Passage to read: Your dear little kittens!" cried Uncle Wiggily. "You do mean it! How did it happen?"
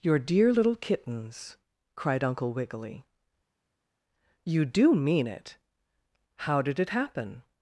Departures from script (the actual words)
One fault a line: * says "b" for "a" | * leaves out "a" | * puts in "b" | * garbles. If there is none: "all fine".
all fine